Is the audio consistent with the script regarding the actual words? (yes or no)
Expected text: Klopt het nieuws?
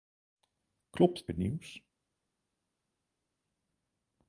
yes